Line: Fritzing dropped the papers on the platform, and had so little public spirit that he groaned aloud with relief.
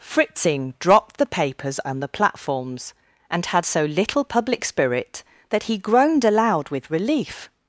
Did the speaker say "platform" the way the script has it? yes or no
no